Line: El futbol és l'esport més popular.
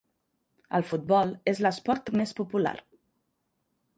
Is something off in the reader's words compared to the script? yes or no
no